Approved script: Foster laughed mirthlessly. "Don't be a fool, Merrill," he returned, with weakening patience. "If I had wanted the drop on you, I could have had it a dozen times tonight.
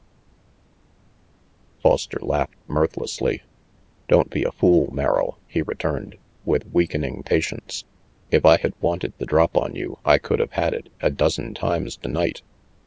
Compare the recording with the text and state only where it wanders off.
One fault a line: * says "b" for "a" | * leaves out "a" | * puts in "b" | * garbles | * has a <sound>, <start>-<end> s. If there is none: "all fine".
all fine